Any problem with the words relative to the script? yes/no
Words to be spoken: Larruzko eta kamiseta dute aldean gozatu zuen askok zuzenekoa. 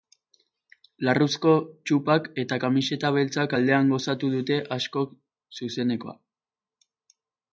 yes